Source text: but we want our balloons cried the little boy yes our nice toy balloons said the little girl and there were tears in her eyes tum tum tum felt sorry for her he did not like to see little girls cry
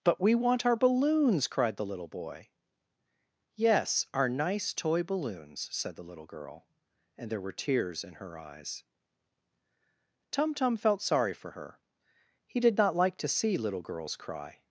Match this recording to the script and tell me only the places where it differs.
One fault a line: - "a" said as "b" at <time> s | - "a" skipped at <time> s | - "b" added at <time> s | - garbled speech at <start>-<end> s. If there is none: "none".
- "tum" skipped at 10.8 s